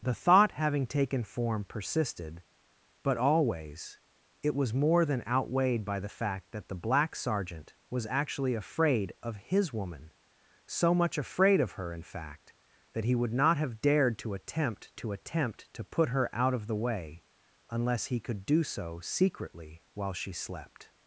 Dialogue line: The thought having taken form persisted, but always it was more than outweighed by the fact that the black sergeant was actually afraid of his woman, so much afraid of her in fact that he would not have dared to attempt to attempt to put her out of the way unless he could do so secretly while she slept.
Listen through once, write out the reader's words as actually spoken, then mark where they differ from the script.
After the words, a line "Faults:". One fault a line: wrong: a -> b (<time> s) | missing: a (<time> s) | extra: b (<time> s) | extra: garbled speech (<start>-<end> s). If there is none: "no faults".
The thought having taken form persisted, but always it was more than outweighed by the fact that the black sergeant was actually afraid of his woman, so much afraid of her in fact that he would not have dared to attempt to attempt to put her out of the way unless he could do so secretly while she slept.
Faults:
no faults